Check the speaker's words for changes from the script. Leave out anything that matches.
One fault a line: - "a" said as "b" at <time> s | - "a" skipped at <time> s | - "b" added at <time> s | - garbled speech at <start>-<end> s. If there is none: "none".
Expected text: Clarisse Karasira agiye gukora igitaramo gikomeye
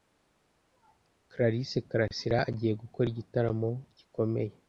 none